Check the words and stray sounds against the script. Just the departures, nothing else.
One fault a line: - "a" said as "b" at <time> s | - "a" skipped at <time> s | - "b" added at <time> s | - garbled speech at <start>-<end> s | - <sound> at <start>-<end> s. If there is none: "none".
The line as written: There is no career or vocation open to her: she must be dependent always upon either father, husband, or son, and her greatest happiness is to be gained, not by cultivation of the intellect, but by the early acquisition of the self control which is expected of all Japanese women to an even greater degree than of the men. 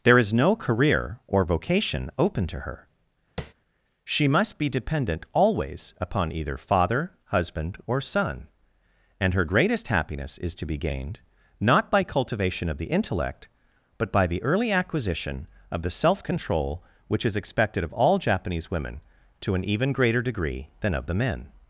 - tap at 3.4-3.5 s